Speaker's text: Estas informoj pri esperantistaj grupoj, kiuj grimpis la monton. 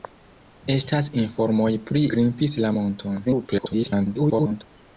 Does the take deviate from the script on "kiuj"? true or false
true